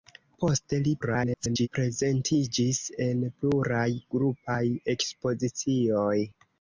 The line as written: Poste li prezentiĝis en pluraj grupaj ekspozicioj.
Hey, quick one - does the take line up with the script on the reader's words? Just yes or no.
no